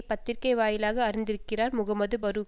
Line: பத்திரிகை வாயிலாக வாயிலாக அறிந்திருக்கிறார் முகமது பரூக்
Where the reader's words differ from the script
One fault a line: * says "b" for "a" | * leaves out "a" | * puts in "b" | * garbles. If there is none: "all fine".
* leaves out "வாயிலாக"